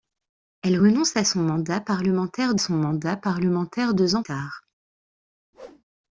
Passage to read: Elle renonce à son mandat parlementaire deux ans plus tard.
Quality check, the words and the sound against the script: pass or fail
fail